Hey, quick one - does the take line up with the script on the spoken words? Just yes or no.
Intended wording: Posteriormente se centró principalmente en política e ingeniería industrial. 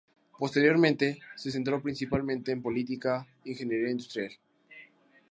yes